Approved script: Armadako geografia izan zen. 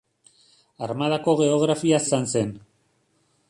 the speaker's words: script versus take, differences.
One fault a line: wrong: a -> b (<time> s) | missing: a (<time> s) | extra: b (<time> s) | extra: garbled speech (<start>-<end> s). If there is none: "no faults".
no faults